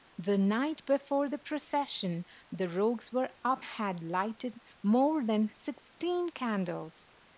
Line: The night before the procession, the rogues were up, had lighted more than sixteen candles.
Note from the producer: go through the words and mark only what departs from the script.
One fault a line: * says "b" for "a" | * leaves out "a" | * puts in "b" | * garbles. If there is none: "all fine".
all fine